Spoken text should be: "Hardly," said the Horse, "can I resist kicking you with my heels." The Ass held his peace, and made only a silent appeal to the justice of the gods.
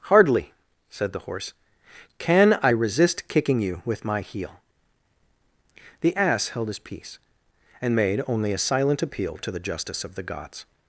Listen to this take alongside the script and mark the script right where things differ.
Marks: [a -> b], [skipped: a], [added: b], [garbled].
"Hardly," said the Horse, "can I resist kicking you with my [heels." -> heel] The Ass held his peace, and made only a silent appeal to the justice of the gods.